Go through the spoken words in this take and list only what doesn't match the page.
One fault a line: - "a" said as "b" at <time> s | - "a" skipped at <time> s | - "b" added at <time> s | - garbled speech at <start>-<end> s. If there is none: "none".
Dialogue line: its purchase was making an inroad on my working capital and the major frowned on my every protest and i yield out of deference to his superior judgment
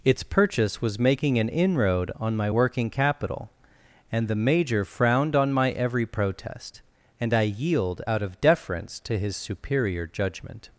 none